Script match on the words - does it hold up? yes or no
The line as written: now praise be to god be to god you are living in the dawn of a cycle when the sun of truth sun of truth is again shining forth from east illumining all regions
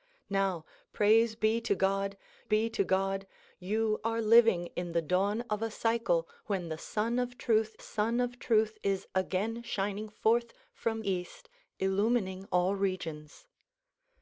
yes